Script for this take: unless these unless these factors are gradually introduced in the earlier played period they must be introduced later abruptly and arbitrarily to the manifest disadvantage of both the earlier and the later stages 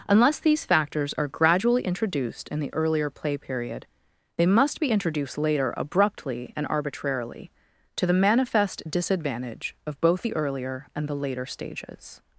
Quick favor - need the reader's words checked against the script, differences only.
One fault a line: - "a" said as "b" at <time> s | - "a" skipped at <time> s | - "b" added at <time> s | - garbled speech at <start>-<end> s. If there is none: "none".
- "unless these" skipped at 0.7 s
- "played" said as "play" at 3.1 s